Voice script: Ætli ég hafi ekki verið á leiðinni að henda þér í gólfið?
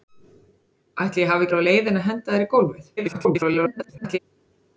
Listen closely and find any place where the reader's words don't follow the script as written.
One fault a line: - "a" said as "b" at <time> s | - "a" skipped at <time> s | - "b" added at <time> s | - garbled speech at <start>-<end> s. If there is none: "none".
- "ekki" skipped at 1.5 s
- garbled speech at 3.0-4.2 s